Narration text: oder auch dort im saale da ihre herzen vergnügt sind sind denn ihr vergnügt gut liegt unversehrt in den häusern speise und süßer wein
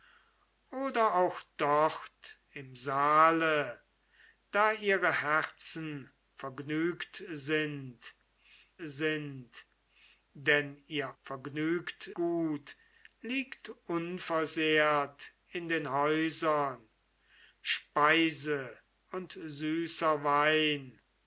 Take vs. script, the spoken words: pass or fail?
pass